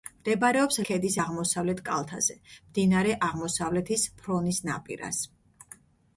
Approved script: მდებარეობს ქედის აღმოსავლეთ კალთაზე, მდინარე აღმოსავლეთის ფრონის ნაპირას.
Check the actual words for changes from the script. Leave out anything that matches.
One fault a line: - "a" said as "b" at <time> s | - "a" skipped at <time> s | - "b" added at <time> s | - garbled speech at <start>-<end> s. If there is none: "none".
none